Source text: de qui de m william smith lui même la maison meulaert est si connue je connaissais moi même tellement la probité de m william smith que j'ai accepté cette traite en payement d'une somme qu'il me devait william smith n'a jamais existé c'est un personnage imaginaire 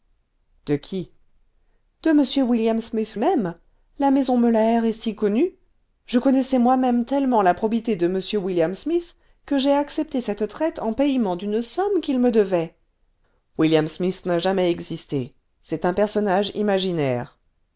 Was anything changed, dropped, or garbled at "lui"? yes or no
yes